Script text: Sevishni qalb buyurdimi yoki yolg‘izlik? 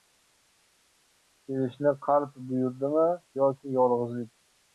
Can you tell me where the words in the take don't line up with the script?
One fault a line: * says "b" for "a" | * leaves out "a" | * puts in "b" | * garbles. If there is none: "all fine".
all fine